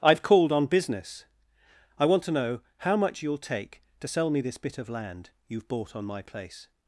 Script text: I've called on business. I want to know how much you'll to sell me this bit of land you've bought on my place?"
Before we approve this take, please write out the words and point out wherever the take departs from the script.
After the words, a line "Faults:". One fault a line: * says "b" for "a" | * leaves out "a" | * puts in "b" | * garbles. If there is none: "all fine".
I've called on business. I want to know how much you'll take to sell me this bit of land you've bought on my place?"
Faults:
* puts in "take"